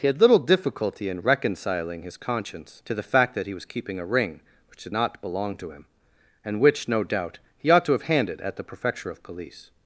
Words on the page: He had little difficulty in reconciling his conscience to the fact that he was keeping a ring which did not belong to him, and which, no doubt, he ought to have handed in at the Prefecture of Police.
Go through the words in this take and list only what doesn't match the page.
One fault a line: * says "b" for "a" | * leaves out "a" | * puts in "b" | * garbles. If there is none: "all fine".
* leaves out "in"